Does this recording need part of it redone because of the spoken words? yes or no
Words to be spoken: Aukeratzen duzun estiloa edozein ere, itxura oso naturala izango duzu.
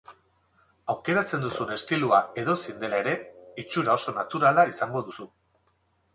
yes